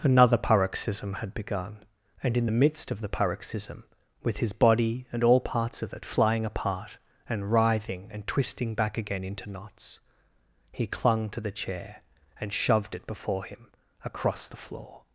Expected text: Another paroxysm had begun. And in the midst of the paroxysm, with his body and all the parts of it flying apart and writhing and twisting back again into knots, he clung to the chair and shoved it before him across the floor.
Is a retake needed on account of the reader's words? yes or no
yes